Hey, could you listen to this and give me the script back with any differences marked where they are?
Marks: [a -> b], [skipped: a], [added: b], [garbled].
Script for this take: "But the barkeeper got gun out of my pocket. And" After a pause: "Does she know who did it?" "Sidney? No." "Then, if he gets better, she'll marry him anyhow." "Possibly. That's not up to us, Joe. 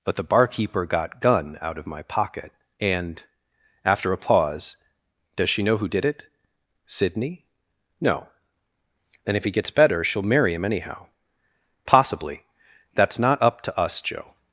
"But the barkeeper got gun out of my pocket. And" After a pause: "Does she know who did it?" "Sidney? No." "Then, if he gets better, she'll marry him anyhow." "Possibly. That's not up to us, Joe.